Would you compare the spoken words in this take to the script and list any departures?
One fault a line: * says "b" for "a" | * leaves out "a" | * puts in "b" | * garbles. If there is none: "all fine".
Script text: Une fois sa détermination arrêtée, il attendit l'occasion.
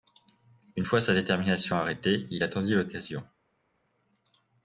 all fine